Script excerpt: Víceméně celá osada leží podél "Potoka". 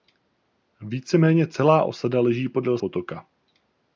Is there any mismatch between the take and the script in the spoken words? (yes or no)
no